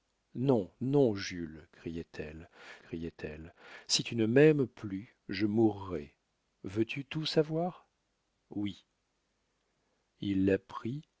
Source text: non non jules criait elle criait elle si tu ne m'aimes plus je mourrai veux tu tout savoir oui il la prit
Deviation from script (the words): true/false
false